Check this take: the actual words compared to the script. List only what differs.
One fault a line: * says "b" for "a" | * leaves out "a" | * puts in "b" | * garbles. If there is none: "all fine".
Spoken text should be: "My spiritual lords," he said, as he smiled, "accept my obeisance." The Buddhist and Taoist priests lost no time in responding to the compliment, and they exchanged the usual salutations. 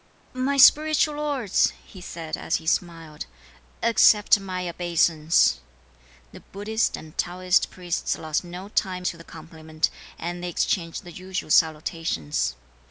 * leaves out "in responding"